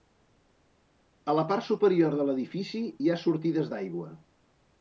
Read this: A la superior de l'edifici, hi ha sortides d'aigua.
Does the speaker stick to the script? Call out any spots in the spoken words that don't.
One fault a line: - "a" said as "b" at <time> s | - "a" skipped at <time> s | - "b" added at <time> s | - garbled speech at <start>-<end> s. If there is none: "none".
- "part" added at 1.5 s